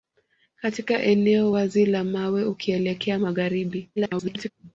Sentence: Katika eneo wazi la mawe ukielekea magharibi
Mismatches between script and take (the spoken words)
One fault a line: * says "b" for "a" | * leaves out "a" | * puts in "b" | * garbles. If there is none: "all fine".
* garbles